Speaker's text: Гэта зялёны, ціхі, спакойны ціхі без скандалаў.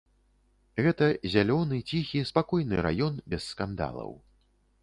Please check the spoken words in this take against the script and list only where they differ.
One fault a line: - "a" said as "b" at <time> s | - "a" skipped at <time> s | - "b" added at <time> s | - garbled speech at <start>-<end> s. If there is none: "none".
- "ціхі" said as "раён" at 2.9 s